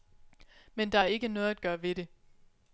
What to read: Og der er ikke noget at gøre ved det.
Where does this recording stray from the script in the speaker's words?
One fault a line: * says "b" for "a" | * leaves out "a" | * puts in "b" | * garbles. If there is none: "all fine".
* says "Men" for "Og"